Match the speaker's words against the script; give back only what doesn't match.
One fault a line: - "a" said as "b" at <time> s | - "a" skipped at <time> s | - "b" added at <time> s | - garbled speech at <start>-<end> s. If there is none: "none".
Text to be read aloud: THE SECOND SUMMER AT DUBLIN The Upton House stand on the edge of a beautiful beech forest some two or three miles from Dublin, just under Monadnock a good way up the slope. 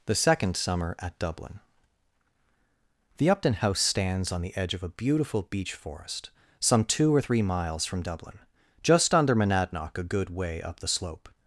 - "stand" said as "stands" at 3.8 s